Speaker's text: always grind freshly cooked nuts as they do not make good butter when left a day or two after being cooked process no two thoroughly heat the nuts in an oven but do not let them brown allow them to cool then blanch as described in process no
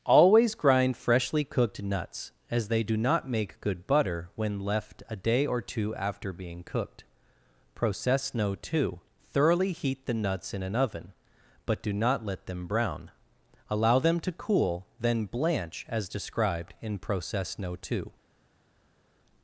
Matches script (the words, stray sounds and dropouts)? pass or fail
fail